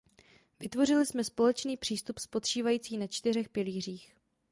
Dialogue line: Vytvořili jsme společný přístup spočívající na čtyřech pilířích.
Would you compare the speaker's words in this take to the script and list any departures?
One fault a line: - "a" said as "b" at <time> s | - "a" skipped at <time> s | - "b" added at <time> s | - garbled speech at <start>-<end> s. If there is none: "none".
none